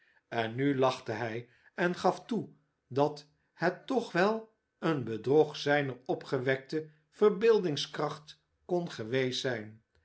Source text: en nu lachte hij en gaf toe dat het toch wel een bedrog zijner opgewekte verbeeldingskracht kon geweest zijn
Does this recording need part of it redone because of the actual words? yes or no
no